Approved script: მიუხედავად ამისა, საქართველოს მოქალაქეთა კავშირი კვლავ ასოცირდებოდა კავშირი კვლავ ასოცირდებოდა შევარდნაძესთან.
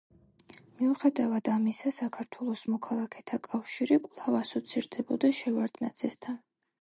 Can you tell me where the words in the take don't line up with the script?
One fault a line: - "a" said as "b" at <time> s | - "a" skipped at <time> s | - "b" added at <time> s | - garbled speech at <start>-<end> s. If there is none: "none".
- "კავშირი კვლავ ასოცირდებოდა" skipped at 5.3 s